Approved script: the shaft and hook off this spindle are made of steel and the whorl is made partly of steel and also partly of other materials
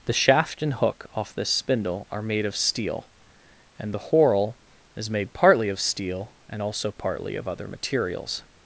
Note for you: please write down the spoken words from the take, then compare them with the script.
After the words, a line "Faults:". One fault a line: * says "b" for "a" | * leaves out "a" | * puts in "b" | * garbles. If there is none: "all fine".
the shaft and hook off this spindle are made of steel and the whorl is made partly of steel and also partly of other materials
Faults:
all fine